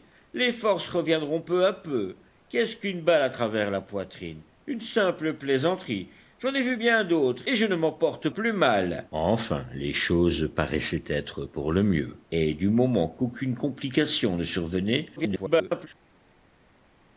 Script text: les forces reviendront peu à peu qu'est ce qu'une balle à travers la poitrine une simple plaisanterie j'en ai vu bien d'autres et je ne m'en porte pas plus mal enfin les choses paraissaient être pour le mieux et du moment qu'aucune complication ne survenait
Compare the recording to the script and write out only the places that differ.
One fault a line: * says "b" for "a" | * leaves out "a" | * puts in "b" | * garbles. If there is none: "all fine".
* leaves out "pas"
* garbles